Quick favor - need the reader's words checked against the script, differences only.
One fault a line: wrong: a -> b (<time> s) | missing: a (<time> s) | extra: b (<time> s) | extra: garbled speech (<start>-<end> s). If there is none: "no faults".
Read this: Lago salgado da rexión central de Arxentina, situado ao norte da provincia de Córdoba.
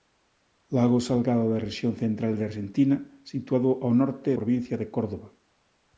missing: da (4.3 s)